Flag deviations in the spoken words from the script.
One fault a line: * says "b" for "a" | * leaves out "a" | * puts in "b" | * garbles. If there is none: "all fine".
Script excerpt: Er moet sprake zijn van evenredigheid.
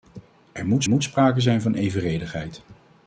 * puts in "moet"